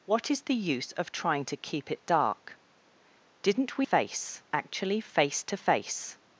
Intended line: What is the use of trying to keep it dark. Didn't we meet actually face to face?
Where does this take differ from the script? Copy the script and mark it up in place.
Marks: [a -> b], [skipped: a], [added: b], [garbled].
What is the use of trying to keep it dark. Didn't we [meet -> face] actually face to face?